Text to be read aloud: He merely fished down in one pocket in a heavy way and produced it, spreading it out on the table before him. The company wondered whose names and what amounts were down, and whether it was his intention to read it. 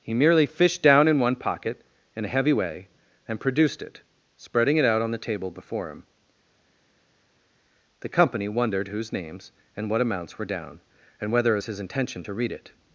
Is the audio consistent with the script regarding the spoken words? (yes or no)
yes